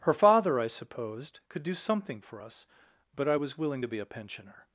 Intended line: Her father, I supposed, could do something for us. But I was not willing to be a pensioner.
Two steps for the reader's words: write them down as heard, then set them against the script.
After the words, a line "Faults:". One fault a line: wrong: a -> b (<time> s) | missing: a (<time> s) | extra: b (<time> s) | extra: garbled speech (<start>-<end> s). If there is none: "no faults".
Her father, I supposed, could do something for us. But I was willing to be a pensioner.
Faults:
missing: not (3.6 s)